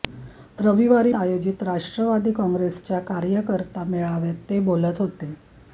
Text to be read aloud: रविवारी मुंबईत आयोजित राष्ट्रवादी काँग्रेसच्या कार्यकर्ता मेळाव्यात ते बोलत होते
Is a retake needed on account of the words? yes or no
yes